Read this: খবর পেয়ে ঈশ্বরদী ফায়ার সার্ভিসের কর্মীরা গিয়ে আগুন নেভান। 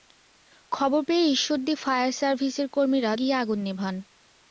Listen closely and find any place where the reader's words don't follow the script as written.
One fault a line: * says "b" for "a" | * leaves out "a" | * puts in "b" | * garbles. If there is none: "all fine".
all fine